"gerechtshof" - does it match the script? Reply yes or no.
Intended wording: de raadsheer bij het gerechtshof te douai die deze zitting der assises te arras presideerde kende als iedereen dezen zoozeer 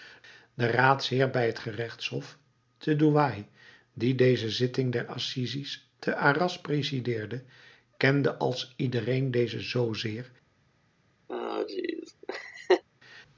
yes